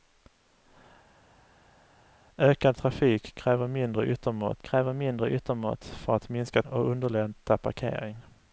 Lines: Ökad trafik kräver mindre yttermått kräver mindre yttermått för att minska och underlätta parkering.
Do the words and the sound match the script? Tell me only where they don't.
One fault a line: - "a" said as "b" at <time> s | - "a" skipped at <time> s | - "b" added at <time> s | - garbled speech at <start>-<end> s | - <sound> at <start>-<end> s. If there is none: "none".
none